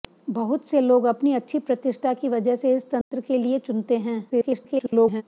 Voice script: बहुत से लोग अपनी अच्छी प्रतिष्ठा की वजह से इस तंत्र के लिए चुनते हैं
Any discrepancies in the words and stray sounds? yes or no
yes